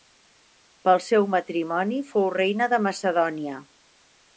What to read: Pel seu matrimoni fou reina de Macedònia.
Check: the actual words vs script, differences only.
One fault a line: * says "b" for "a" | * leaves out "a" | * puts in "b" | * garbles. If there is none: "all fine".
all fine